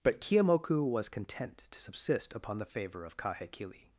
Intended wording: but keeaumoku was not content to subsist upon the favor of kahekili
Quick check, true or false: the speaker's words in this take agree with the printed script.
false